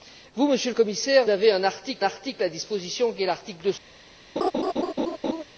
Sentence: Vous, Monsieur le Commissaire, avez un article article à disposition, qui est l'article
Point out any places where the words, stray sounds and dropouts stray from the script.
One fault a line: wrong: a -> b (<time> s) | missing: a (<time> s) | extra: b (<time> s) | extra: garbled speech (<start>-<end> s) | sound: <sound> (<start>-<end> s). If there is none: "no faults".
sound: laugh (4.4-5.4 s)